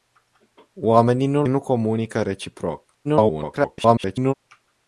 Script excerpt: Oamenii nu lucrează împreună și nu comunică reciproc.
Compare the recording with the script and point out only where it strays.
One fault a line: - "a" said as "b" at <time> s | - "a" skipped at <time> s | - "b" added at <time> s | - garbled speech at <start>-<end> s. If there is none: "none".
- "lucrează împreună și" skipped at 1.4 s
- garbled speech at 3.0-4.3 s